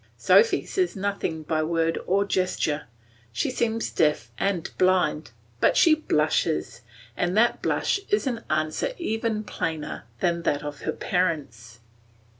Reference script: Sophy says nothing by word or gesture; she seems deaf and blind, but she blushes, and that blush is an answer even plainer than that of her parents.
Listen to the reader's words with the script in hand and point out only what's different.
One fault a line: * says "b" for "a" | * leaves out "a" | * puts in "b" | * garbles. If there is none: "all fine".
all fine